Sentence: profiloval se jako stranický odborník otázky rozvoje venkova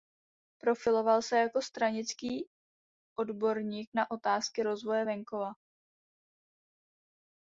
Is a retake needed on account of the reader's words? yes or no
yes